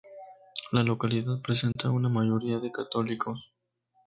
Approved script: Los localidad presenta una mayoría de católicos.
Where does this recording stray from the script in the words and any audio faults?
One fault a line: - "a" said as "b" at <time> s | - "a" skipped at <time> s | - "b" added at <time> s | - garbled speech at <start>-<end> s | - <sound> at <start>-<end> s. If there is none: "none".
- "Los" said as "La" at 0.7 s
- dropout at 1.7-1.8 s